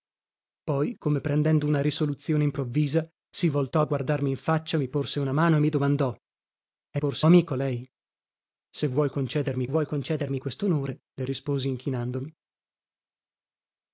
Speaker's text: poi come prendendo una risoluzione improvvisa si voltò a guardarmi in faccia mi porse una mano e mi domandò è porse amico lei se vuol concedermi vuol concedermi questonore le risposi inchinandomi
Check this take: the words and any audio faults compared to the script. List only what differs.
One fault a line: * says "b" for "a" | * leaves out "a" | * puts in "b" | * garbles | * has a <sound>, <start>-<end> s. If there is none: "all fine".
all fine